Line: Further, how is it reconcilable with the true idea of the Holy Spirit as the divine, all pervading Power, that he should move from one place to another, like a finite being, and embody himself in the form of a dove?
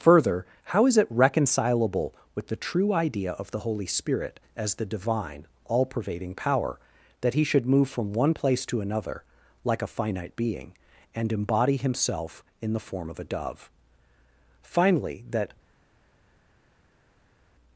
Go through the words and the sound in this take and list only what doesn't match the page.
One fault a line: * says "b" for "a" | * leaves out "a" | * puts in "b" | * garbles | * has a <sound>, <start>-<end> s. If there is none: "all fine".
* puts in "Finally that"